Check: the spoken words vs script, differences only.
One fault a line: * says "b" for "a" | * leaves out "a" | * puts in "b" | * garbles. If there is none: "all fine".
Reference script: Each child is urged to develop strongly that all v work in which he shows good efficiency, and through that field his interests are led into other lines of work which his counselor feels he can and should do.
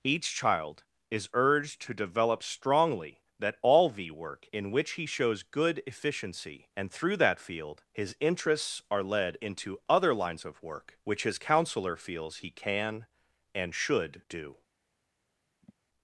all fine